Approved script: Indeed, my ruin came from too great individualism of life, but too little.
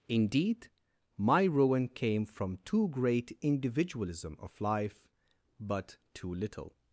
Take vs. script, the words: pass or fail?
pass